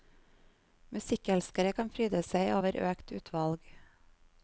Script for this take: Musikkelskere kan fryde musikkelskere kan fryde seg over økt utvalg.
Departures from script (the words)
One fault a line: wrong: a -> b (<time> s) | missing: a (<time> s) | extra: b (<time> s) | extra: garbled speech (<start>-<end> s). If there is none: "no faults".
missing: musikkelskere kan fryde (2.2 s)